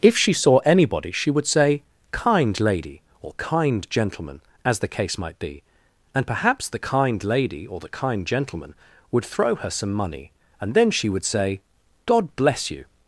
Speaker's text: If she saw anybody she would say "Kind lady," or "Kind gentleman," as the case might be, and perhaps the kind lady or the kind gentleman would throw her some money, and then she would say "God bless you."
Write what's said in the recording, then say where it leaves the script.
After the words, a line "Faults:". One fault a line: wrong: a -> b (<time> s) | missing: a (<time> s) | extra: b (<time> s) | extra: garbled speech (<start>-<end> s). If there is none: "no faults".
If she saw anybody she would say "Kind lady," or "Kind gentleman," as the case might be, and perhaps the kind lady or the kind gentleman would throw her some money, and then she would say "God bless you."
Faults:
no faults